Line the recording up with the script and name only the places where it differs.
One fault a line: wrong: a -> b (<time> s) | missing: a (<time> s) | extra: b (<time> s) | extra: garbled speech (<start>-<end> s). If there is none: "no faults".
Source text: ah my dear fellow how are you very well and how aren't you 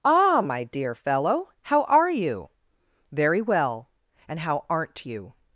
no faults